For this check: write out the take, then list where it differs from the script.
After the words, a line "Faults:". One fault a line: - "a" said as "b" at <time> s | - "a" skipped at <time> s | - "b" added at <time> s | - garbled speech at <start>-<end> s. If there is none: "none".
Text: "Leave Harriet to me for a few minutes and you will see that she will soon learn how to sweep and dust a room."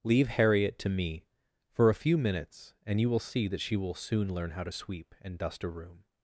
"Leave Harriet to me for a few minutes and you will see that she will soon learn how to sweep and dust a room."
Faults:
none